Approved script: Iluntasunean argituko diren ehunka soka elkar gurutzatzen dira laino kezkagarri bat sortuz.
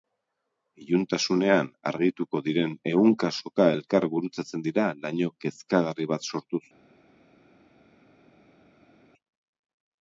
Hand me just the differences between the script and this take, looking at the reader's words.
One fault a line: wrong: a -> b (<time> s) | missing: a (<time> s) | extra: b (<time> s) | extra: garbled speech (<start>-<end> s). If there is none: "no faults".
no faults